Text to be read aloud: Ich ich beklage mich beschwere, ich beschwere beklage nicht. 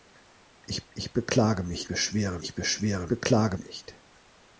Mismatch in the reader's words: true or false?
false